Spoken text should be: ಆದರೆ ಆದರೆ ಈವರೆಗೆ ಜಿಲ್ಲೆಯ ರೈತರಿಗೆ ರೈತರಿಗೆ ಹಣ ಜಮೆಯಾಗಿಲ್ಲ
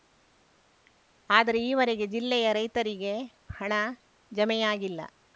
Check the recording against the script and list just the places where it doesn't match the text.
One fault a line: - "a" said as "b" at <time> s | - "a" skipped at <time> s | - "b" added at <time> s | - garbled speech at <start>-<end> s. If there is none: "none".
- "ಆದರೆ" skipped at 1.6 s
- "ರೈತರಿಗೆ" skipped at 3.1 s